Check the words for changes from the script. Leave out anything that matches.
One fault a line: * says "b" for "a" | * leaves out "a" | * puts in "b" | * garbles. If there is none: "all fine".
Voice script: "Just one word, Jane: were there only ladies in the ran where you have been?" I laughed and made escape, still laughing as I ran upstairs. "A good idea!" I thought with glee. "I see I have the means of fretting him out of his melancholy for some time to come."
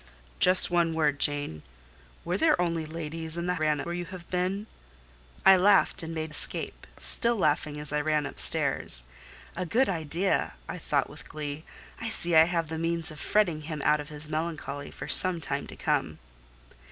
all fine